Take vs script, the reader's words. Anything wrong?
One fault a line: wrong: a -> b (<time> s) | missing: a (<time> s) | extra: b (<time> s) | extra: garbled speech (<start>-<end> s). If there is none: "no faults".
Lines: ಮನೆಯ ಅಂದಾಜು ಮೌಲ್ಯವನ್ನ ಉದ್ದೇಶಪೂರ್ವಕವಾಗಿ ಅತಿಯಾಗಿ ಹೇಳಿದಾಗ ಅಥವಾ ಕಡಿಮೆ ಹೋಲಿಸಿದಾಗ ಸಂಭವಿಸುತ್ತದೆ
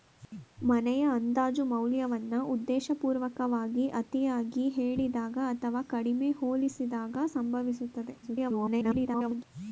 extra: garbled speech (8.2-9.4 s)